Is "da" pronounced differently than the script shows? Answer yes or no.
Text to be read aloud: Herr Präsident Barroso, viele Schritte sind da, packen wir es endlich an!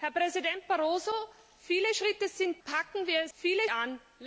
yes